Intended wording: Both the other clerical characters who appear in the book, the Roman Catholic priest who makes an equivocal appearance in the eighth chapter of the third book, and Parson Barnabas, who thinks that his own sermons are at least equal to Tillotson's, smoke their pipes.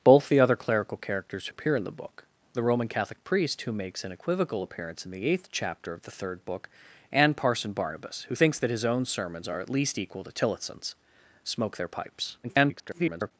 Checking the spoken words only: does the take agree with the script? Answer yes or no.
no